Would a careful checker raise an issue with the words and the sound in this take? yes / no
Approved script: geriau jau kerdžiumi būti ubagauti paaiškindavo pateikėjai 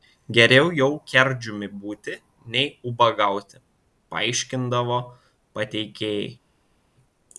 yes